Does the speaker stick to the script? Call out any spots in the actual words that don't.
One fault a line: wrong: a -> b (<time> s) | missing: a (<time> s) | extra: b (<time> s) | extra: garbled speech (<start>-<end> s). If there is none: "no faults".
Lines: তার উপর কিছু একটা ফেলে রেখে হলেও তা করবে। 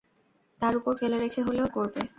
missing: কিছু একটা (0.9 s)
missing: তা (1.7 s)